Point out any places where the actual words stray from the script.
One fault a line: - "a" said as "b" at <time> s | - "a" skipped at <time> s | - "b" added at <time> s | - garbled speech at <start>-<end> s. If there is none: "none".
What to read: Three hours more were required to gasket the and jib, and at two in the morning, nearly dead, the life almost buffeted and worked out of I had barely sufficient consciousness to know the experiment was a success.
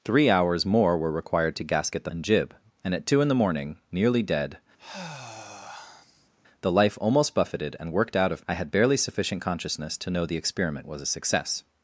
none